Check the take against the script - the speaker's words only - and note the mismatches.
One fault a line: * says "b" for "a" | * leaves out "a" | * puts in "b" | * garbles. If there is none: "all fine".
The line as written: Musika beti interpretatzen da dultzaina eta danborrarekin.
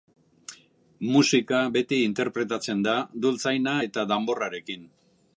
all fine